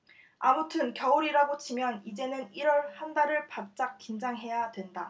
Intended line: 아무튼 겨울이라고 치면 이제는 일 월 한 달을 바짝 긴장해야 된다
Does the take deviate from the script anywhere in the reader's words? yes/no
no